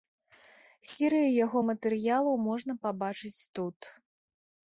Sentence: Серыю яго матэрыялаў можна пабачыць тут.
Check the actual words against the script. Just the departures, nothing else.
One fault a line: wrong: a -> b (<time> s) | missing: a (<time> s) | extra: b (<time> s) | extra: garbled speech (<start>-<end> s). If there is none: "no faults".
no faults